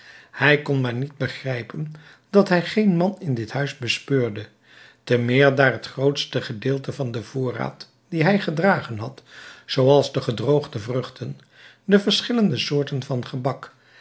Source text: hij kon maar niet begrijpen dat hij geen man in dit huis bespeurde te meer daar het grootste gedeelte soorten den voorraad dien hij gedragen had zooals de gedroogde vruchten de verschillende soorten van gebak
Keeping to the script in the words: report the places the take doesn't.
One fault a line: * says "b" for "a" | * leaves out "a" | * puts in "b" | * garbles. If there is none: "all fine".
* says "van" for "soorten"